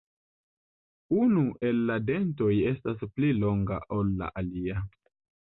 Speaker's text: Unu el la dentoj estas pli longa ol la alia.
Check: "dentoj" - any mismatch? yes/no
no